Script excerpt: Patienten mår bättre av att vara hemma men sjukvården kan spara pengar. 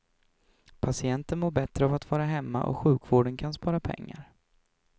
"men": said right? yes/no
no